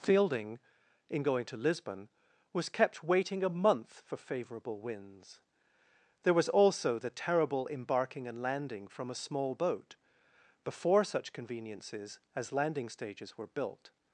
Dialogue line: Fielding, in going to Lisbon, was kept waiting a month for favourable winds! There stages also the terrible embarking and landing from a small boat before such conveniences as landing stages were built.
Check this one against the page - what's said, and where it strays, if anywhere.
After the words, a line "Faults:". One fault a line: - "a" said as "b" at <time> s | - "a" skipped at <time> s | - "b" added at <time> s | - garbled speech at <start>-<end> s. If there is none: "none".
Fielding, in going to Lisbon, was kept waiting a month for favourable winds! There was also the terrible embarking and landing from a small boat before such conveniences as landing stages were built.
Faults:
- "stages" said as "was" at 6.3 s